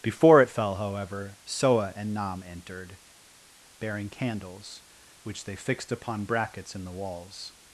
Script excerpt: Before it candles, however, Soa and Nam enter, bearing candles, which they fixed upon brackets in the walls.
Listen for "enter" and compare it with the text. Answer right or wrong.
wrong